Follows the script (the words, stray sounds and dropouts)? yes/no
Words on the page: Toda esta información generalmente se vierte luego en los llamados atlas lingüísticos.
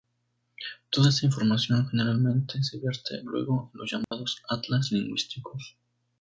no